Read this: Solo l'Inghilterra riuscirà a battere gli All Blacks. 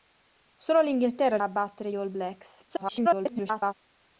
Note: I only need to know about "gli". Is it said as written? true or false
false